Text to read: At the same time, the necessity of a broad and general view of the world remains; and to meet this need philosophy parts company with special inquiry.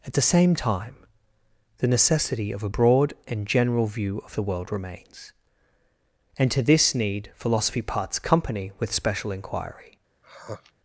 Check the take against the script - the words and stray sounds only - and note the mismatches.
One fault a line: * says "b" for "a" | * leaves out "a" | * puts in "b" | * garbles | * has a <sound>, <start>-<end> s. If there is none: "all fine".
* leaves out "meet"
* has a sigh, 10.2-10.7 s